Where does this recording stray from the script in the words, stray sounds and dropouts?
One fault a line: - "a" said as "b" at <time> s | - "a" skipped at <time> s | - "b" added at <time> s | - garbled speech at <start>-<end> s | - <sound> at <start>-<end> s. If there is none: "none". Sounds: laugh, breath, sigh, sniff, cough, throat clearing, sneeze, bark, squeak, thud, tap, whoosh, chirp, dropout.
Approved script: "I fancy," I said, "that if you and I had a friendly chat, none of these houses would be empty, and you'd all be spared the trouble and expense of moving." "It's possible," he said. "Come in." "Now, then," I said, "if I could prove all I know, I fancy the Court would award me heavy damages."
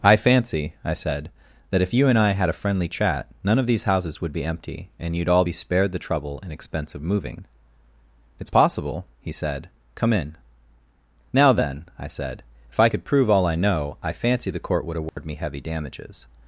- dropout at 15.1-15.2 s